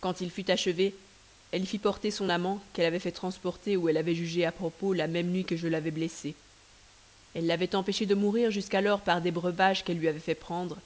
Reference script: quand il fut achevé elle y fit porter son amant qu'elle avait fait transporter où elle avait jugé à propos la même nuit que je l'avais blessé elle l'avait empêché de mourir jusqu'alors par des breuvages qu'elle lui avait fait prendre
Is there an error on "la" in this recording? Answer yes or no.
no